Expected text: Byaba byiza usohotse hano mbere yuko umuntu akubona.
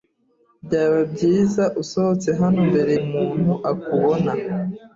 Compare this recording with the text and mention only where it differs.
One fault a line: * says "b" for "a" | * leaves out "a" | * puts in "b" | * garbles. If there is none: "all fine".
* leaves out "yuko"